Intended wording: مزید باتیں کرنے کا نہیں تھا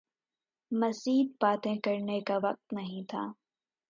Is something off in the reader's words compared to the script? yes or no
yes